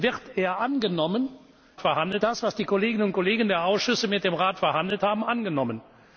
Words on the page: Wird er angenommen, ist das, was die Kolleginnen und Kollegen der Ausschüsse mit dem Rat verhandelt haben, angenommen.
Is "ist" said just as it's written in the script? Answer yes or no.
no